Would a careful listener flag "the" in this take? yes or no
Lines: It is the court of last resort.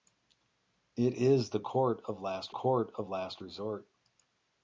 no